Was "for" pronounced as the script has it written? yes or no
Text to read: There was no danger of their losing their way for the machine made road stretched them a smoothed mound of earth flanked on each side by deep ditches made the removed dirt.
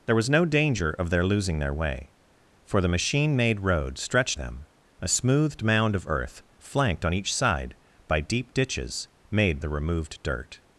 yes